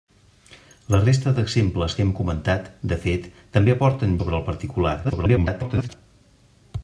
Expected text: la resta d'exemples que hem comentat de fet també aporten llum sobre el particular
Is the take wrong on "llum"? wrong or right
wrong